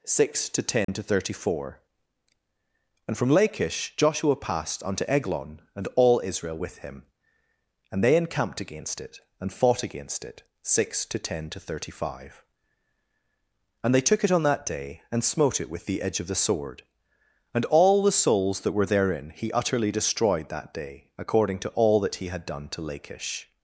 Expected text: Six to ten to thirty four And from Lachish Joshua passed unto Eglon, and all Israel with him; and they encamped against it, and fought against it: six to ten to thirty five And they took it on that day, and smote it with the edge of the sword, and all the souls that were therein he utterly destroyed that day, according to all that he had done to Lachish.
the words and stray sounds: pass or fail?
fail